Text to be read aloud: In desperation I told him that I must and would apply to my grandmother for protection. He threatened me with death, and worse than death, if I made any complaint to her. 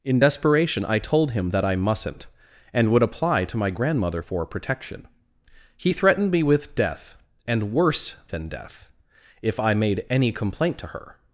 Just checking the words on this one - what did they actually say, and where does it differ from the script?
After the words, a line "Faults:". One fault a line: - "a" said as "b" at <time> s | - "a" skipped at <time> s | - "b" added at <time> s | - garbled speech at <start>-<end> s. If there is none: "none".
In desperation I told him that I mustn't and would apply to my grandmother for protection. He threatened me with death, and worse than death, if I made any complaint to her.
Faults:
- "must" said as "mustn't" at 1.7 s